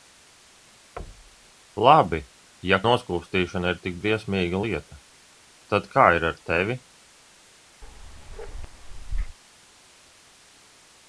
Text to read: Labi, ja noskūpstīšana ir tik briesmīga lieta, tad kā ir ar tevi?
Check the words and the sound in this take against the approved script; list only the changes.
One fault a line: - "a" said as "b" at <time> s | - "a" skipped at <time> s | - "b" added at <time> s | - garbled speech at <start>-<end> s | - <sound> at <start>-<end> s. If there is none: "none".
- thud at 1.0-1.5 s
- bark at 7.8-9.4 s